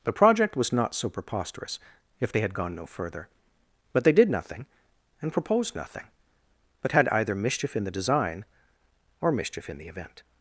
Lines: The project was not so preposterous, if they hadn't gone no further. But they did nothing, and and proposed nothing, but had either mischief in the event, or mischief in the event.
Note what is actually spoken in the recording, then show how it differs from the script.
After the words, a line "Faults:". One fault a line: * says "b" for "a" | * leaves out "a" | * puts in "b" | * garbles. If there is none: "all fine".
The project was not so preposterous, if they had gone no further. But they did nothing, and proposed nothing, but had either mischief in the design, or mischief in the event.
Faults:
* says "had" for "hadn't"
* leaves out "and"
* says "design" for "event"